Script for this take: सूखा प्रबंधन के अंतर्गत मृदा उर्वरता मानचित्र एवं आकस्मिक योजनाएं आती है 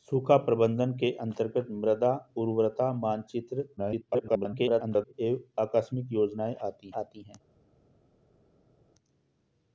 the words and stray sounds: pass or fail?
fail